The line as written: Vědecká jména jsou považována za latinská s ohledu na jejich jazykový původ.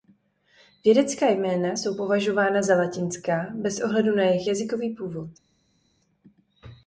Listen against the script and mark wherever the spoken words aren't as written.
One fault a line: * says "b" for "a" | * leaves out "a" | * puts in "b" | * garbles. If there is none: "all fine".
* says "bez" for "s"